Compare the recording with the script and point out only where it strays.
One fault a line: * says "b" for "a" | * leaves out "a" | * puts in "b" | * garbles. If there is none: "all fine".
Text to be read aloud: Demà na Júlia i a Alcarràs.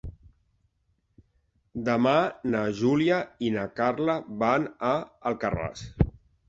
* puts in "na Carla van"